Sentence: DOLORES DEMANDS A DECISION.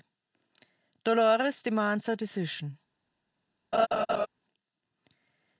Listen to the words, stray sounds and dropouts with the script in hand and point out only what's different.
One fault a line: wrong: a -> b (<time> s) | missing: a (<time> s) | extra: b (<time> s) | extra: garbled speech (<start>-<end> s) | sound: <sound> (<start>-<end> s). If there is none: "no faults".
sound: laugh (3.7-4.3 s)